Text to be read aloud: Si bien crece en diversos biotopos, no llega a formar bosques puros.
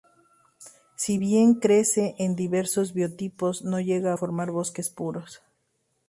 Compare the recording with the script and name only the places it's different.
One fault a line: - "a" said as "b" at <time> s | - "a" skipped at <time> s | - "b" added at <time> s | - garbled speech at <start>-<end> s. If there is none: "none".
none